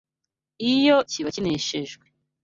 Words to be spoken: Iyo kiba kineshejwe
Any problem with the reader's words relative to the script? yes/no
no